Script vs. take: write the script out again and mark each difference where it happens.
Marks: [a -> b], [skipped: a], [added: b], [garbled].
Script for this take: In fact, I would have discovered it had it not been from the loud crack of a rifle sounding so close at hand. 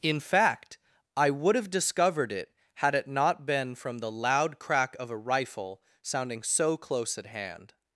In fact, I would have discovered it had it not been from the loud crack of a rifle sounding so close at hand.